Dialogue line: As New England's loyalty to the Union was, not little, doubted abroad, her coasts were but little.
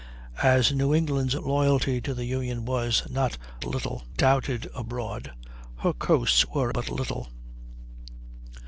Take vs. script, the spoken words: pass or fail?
pass